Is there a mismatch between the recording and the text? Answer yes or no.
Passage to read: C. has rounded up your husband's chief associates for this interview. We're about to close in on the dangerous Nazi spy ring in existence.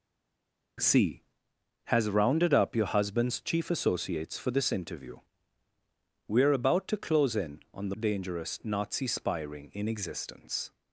no